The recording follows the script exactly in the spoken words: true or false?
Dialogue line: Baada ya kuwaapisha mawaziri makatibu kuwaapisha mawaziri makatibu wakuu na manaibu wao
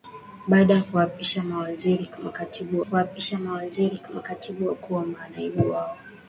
true